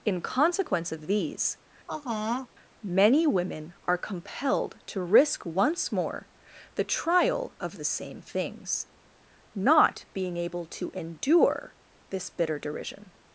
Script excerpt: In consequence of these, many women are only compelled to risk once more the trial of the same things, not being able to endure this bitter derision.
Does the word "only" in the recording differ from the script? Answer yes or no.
yes